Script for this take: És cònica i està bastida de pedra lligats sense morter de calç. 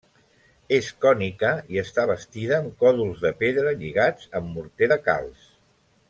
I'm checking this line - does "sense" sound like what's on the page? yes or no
no